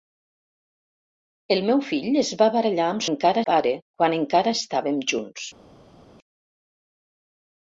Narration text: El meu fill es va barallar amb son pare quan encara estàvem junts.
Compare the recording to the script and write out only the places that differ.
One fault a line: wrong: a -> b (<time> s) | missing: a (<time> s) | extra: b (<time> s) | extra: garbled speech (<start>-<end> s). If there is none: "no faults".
wrong: son -> encara (3.1 s)